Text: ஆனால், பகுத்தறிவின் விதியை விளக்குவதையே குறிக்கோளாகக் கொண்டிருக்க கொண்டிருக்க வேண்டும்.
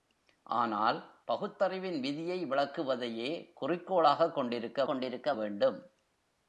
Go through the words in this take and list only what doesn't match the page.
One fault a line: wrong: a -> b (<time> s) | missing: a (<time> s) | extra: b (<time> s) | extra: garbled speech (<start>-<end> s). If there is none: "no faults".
no faults